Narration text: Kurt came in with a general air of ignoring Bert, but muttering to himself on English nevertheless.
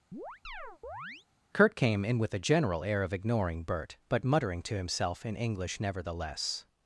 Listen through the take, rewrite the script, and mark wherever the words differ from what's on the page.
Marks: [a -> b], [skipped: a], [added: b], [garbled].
Kurt came in with a general air of ignoring Bert, but muttering to himself [on -> in] English nevertheless.